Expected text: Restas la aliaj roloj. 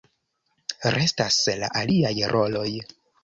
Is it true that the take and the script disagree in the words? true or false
false